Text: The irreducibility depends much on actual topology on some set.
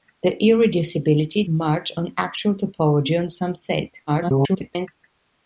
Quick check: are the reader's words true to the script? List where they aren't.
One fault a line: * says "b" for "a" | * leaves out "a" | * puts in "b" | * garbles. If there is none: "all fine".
* leaves out "depends"
* garbles